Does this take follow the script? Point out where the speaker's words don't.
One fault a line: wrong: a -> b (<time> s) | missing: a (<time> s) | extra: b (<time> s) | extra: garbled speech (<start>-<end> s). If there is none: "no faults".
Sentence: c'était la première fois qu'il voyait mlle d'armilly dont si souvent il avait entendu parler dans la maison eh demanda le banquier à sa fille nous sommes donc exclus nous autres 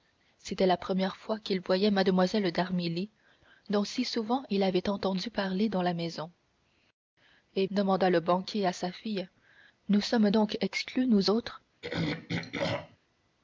no faults